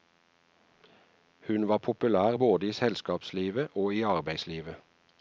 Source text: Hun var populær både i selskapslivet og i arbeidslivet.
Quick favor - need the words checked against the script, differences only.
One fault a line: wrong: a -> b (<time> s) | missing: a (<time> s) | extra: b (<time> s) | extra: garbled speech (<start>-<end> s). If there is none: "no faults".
no faults